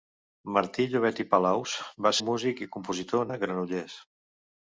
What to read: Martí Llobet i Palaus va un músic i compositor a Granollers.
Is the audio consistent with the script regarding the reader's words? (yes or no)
yes